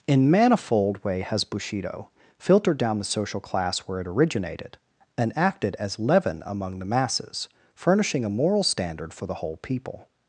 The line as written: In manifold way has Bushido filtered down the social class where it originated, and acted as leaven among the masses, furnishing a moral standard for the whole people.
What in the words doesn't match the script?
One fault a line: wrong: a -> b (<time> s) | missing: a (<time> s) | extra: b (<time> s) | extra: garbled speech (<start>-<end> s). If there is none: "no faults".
no faults